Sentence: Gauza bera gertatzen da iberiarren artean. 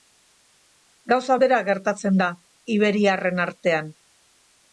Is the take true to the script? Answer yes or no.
yes